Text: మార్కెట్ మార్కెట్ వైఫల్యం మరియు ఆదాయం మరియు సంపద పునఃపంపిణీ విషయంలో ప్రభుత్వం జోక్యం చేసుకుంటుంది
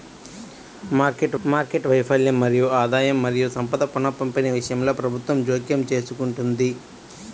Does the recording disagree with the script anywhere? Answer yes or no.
no